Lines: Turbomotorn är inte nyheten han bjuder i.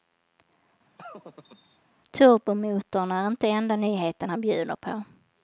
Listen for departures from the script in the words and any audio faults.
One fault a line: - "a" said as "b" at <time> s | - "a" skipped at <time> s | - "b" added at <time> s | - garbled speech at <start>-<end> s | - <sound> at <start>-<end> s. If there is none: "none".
- laugh at 1.0-1.8 s
- "enda" added at 3.5 s
- "i" said as "på" at 4.8 s